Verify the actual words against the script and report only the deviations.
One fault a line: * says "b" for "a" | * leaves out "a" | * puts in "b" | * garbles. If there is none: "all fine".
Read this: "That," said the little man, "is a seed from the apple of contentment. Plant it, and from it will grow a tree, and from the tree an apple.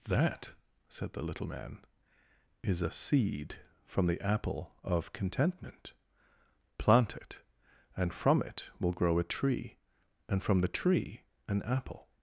all fine